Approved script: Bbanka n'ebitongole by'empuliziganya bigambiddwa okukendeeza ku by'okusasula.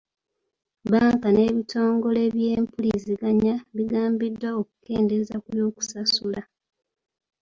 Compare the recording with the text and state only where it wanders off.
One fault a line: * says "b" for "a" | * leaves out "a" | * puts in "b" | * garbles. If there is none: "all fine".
all fine